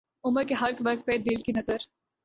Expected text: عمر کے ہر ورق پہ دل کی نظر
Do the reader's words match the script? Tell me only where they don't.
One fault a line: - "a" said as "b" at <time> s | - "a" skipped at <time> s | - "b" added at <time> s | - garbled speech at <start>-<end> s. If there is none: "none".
none